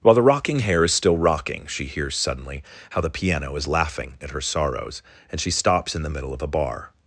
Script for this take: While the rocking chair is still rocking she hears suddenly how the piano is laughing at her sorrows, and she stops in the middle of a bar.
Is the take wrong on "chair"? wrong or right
wrong